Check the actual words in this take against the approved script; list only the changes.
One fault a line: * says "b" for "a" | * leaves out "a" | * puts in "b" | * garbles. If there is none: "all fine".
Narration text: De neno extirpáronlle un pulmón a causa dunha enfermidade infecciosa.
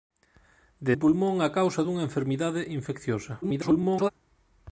* leaves out "neno extirpáronlle"
* garbles